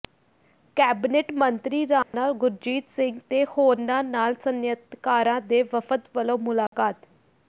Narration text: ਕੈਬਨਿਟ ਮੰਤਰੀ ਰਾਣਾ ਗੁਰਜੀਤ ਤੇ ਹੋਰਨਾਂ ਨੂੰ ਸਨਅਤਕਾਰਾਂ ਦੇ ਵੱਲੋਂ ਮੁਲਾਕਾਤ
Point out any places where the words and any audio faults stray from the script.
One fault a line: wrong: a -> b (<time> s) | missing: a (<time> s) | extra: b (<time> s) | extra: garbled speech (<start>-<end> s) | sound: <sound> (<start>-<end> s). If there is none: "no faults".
sound: dropout (2.0-2.1 s)
extra: ਸਿੰਘ (2.9 s)
wrong: ਨੂੰ -> ਨਾਲ (4.0 s)
extra: ਵਫ਼ਦ (5.7 s)
sound: dropout (6.7-6.7 s)